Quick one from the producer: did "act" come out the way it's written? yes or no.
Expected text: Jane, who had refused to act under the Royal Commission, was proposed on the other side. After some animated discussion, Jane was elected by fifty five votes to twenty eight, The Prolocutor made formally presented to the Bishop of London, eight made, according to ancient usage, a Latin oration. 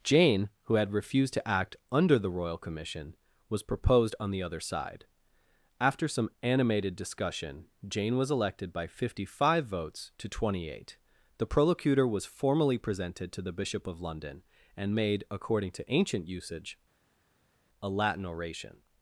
yes